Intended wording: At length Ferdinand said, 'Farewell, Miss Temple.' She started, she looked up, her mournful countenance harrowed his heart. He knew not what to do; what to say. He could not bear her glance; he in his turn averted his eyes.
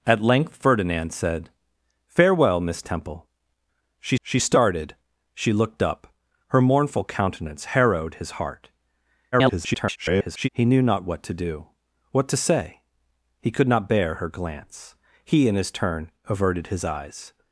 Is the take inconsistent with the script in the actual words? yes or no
yes